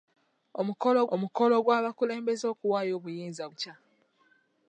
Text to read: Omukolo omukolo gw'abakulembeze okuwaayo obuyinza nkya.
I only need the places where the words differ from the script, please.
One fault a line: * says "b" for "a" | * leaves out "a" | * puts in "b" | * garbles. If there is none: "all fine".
all fine